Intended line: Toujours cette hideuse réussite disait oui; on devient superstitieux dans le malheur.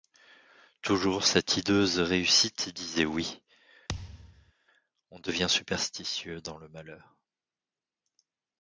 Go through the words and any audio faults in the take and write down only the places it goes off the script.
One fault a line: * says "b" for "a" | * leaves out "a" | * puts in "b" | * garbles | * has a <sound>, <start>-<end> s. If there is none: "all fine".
* has a thud, 3.9-4.5 s